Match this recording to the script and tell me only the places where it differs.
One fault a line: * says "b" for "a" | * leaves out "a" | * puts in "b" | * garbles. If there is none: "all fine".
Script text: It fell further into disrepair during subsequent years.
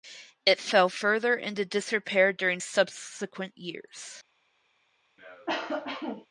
all fine